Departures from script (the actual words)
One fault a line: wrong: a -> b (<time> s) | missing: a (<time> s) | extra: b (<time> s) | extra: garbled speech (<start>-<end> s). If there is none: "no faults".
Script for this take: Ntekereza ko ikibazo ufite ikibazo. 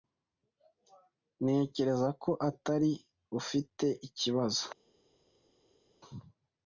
wrong: ikibazo -> atari (2.5 s)